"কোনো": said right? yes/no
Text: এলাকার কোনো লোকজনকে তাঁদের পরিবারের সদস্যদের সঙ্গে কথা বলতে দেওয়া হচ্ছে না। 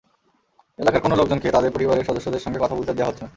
yes